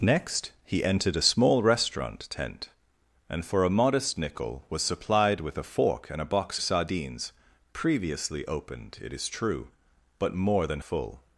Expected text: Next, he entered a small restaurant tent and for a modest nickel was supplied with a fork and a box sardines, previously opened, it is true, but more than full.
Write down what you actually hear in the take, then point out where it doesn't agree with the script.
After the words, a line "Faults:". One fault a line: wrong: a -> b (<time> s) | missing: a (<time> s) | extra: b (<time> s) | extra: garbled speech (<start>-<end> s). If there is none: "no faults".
Next, he entered a small restaurant tent and for a modest nickel was supplied with a fork and a box sardines, previously opened, it is true, but more than full.
Faults:
no faults